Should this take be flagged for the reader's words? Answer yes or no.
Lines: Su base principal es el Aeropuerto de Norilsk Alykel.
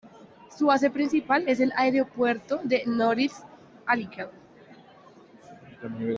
no